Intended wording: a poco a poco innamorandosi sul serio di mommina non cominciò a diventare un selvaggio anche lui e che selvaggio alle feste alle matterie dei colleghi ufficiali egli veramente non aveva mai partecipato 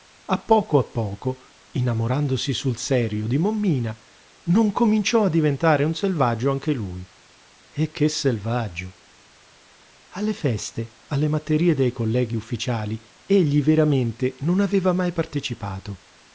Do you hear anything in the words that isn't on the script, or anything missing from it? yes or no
no